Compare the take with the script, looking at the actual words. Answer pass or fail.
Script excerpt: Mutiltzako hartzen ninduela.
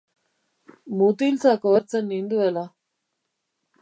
pass